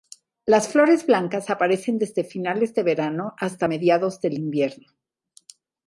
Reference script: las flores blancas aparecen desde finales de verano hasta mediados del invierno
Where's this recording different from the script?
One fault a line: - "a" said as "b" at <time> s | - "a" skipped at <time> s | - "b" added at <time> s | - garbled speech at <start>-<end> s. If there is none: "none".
none